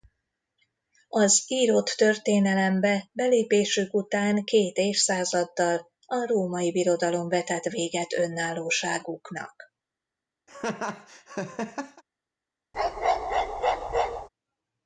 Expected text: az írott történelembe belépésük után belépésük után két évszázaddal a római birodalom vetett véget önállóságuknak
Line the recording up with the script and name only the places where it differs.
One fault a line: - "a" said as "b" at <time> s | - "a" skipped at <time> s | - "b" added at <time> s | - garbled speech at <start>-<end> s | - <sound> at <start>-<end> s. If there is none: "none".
- "belépésük után" skipped at 4.5 s
- laugh at 10.5-12.0 s
- bark at 12.7-14.3 s